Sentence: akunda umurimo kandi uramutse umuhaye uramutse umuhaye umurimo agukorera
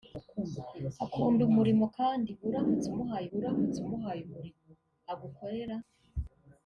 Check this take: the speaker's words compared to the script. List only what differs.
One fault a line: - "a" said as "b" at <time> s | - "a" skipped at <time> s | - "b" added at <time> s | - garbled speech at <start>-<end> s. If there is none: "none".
none